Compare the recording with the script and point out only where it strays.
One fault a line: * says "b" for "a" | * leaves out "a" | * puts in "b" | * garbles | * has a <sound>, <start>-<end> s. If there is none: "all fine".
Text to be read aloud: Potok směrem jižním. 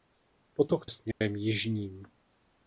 * has a dropout, 1.1-1.2 s